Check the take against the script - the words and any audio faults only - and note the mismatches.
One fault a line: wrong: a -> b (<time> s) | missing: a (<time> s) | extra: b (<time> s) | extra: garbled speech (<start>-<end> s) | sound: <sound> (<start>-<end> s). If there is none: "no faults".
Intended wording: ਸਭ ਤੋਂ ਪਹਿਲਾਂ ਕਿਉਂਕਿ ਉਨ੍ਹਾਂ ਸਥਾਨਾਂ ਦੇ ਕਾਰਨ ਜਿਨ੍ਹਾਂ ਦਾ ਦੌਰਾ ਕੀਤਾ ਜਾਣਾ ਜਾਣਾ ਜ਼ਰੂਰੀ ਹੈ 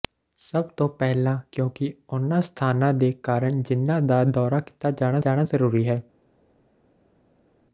no faults